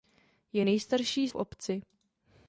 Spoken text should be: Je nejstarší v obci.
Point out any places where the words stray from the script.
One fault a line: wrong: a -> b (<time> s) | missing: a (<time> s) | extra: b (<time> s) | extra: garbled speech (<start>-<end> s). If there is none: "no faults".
no faults